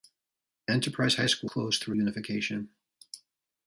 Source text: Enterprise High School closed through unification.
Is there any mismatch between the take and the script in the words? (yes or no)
no